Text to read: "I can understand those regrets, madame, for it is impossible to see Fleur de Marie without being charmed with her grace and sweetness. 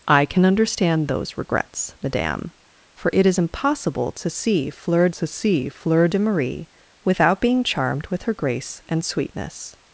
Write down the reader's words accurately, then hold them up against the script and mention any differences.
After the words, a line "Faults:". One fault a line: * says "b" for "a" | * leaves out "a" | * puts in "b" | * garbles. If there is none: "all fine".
"I can understand those regrets, madame, for it is impossible to see Fleur to see Fleur de Marie without being charmed with her grace and sweetness.
Faults:
* puts in "to see Fleur"